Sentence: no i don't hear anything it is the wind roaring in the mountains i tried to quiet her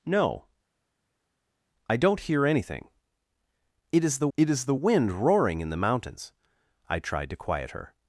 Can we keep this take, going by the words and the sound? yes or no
no